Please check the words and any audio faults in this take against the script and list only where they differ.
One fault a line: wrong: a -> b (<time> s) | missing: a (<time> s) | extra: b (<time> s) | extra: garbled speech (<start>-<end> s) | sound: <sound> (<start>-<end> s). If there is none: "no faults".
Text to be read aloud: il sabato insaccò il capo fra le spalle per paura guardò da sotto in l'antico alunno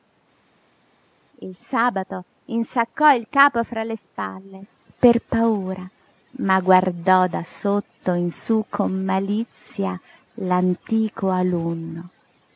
extra: ma (6.4 s)
extra: sú con malizia (8.3 s)